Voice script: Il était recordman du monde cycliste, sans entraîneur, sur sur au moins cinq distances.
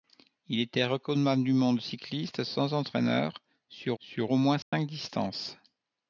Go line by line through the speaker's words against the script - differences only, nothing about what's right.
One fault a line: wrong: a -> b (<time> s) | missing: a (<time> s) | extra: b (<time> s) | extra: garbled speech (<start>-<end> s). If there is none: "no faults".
no faults